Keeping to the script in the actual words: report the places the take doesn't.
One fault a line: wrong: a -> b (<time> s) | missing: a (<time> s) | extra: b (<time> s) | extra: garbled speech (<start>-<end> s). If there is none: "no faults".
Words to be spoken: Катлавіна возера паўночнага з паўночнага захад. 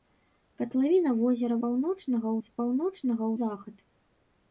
no faults